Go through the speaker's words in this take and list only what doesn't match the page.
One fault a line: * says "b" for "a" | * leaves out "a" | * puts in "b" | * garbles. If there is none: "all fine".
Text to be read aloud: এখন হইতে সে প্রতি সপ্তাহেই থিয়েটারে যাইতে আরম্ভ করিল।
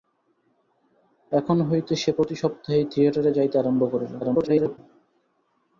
* garbles